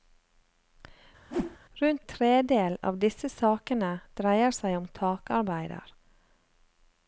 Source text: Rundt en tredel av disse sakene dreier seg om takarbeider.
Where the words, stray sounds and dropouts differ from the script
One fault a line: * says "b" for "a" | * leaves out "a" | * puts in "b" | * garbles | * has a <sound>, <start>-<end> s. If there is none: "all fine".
* has a whoosh, 1.3-1.6 s
* leaves out "en"